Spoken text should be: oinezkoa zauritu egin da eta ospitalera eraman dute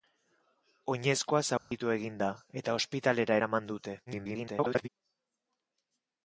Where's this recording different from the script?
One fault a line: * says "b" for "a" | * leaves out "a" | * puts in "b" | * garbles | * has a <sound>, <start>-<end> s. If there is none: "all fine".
* has a dropout, 1.6-1.7 s
* garbles